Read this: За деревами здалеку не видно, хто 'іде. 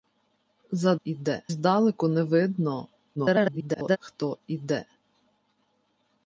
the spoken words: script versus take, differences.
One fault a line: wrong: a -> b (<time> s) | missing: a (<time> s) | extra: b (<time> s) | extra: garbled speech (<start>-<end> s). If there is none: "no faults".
wrong: деревами -> іде (1.0 s)
extra: garbled speech (3.2-4.0 s)